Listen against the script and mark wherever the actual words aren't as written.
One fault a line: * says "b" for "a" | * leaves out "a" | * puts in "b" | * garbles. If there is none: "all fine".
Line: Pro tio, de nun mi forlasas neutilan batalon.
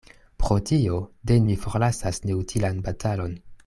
* leaves out "nun"